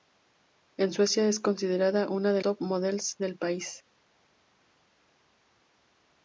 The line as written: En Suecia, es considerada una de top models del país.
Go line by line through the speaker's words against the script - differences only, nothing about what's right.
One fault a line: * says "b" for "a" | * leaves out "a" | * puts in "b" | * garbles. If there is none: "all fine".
all fine